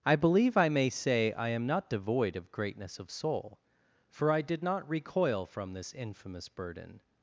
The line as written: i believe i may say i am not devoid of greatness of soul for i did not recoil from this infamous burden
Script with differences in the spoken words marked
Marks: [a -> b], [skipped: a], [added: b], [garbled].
i believe i may say i am not devoid of greatness of soul for i did not recoil from this infamous burden